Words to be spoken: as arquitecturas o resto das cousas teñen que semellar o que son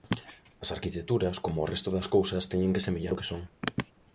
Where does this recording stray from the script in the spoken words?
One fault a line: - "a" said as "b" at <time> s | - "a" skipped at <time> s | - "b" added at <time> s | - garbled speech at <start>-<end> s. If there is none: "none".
- "como" added at 1.4 s